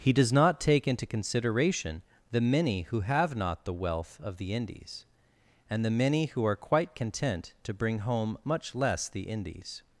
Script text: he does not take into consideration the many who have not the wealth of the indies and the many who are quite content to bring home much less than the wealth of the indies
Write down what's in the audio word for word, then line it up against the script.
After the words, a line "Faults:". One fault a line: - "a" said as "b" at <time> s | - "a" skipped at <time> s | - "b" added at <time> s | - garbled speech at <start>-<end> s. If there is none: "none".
he does not take into consideration the many who have not the wealth of the indies and the many who are quite content to bring home much less the indies
Faults:
- "than the wealth of" skipped at 9.1 s